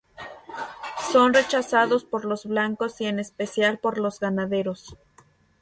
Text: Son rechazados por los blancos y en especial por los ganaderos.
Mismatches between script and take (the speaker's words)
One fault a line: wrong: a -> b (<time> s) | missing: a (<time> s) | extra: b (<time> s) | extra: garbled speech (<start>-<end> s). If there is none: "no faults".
no faults